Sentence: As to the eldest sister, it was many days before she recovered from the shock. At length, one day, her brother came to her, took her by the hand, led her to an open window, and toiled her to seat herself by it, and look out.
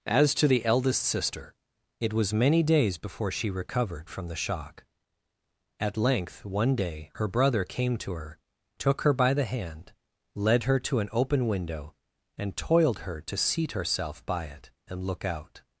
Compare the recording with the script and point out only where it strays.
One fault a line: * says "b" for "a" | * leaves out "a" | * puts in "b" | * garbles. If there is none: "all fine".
all fine